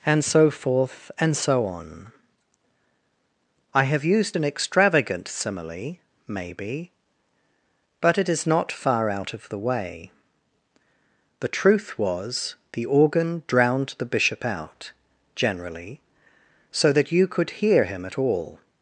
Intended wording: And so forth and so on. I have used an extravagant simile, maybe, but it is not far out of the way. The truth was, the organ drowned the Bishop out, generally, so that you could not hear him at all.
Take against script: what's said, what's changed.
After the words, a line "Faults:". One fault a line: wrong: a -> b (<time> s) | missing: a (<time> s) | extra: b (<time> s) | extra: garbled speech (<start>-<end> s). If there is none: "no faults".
And so forth and so on. I have used an extravagant simile, maybe, but it is not far out of the way. The truth was, the organ drowned the Bishop out, generally, so that you could hear him at all.
Faults:
missing: not (17.5 s)